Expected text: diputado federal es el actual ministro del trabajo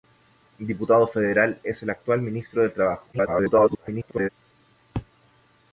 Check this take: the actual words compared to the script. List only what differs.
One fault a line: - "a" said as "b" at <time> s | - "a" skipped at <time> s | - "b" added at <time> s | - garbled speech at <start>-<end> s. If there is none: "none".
- garbled speech at 3.1-4.3 s